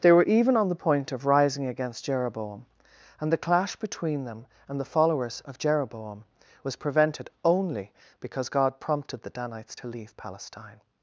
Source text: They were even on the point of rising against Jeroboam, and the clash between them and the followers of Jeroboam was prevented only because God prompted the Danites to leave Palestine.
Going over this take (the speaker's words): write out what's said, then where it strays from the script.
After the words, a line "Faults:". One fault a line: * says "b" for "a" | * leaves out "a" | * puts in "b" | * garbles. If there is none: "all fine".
They were even on the point of rising against Jeroboam, and the clash between them and the followers of Jeroboam was prevented only because God prompted the Danites to leave Palestine.
Faults:
all fine